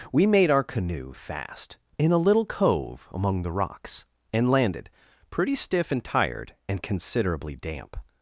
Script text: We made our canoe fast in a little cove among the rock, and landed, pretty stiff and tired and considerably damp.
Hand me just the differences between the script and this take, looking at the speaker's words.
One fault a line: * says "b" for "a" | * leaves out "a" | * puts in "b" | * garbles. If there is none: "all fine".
* says "rocks" for "rock"